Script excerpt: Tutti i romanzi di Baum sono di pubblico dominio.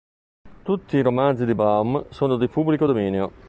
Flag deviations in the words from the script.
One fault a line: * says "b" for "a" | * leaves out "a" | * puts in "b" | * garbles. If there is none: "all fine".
all fine